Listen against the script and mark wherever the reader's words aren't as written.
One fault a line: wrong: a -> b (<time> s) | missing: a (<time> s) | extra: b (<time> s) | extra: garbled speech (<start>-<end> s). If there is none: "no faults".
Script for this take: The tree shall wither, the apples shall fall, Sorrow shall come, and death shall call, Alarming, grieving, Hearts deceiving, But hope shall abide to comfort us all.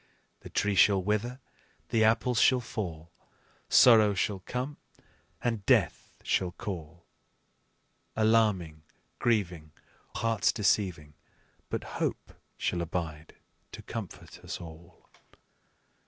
no faults